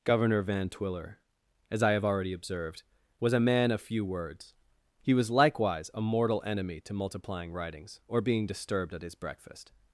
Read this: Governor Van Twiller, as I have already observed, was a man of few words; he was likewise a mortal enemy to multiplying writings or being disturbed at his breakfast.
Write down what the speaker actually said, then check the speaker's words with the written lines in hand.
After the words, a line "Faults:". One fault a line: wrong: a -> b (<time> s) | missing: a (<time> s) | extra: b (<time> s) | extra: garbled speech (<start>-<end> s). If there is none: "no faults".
Governor Van Twiller, as I have already observed, was a man of few words; he was likewise a mortal enemy to multiplying writings or being disturbed at his breakfast.
Faults:
no faults